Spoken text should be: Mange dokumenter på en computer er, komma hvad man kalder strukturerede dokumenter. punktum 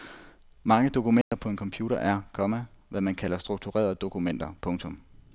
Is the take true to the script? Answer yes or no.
yes